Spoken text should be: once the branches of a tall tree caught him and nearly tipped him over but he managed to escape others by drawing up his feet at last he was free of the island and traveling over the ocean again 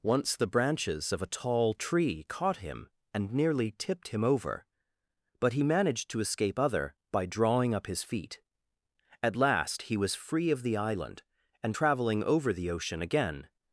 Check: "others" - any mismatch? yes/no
yes